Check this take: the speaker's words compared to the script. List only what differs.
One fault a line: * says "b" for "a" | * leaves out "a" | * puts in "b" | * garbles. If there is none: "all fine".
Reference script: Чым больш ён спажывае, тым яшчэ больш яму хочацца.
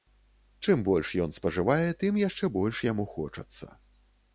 all fine